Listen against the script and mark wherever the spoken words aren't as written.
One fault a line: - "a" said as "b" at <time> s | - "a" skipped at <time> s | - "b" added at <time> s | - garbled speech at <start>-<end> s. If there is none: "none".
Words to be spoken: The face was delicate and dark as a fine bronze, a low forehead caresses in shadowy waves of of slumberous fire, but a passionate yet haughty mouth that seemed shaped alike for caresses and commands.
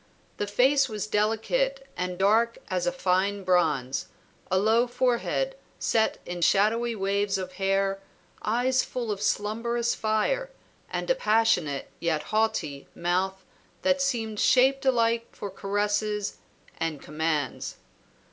- "caresses" said as "set" at 5.8 s
- "hair eyes full" added at 7.5 s
- "but" said as "and" at 10.9 s